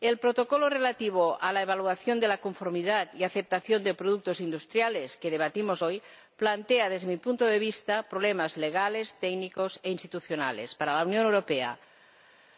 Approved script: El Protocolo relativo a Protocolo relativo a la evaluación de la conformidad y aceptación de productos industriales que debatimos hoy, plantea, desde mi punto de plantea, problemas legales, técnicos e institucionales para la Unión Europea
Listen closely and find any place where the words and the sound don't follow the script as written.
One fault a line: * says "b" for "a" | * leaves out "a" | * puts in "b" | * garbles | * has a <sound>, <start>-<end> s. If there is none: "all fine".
* leaves out "Protocolo relativo a"
* says "vista" for "plantea"